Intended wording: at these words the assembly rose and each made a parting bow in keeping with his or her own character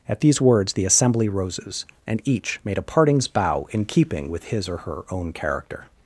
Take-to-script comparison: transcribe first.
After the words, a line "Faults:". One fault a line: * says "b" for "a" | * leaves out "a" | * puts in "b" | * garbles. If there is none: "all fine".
at these words the assembly roses and each made a partings bow in keeping with his or her own character
Faults:
* says "roses" for "rose"
* says "partings" for "parting"